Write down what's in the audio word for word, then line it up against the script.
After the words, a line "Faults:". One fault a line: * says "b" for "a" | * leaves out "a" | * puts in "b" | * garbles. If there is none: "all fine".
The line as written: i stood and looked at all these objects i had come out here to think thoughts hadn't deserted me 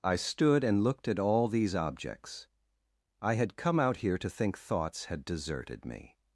i stood and looked at all these objects i had come out here to think thoughts had deserted me
Faults:
* says "had" for "hadn't"